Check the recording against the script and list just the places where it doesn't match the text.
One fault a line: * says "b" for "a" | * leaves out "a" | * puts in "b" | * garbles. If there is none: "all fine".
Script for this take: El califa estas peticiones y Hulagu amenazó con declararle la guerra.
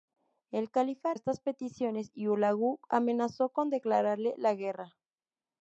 all fine